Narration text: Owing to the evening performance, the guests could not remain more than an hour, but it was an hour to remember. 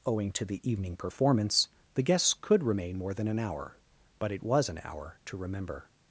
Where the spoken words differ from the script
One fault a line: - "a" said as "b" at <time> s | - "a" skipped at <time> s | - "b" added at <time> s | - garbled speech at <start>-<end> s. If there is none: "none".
- "not" skipped at 2.6 s